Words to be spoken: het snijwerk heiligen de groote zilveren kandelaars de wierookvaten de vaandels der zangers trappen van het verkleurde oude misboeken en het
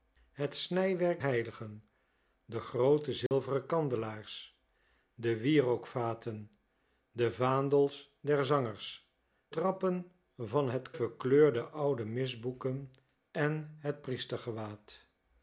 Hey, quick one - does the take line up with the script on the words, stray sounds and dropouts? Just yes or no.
no